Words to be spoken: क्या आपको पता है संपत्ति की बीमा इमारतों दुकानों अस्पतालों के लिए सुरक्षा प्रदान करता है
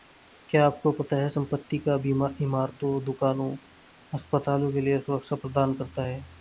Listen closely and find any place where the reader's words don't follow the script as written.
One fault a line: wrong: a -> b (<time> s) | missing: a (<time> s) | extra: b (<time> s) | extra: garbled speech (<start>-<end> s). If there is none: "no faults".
wrong: की -> का (1.8 s)